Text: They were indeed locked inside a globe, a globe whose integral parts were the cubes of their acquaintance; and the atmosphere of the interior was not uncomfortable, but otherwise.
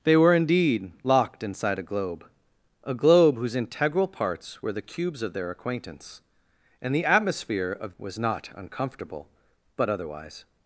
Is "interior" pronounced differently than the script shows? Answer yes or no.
yes